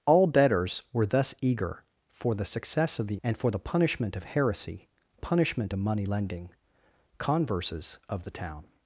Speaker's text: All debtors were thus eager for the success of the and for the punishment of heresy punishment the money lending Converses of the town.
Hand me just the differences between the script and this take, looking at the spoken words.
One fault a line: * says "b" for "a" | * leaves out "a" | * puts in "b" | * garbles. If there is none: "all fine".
all fine